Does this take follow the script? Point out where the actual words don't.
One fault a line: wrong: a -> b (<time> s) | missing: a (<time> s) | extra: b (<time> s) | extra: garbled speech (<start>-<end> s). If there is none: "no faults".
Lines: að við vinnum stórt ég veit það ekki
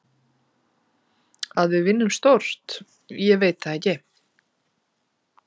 no faults